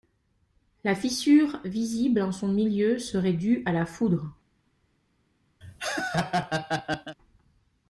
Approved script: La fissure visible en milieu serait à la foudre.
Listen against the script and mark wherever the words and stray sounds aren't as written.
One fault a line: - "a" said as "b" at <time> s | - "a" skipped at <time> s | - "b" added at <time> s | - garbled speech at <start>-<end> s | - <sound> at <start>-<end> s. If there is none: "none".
- "son" added at 2.3 s
- "due" added at 3.3 s
- laugh at 5.6-7.2 s